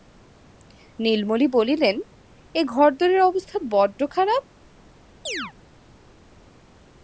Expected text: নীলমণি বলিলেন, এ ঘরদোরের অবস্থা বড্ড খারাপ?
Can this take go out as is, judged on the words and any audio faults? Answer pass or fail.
fail